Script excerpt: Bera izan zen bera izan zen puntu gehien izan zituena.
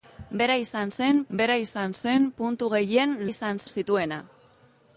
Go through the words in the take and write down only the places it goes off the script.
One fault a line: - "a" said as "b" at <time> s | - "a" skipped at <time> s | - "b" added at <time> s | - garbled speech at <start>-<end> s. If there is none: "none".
none